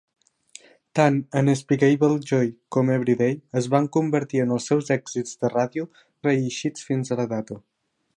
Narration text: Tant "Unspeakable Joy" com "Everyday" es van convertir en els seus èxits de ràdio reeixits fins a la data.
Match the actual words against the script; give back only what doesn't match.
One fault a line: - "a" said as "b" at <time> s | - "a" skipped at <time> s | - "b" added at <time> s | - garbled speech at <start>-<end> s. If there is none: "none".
none